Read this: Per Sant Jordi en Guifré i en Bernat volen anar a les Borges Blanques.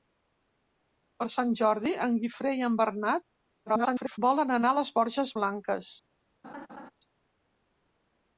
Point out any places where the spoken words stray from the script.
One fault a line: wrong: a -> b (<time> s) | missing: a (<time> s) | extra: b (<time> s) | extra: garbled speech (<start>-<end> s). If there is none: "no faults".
extra: garbled speech (3.7-4.2 s)